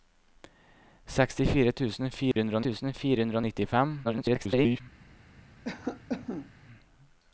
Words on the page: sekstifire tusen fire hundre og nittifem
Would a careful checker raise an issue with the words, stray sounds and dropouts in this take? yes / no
yes